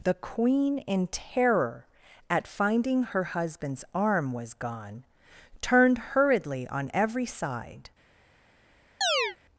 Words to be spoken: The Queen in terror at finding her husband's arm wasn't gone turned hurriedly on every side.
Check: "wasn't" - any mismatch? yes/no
yes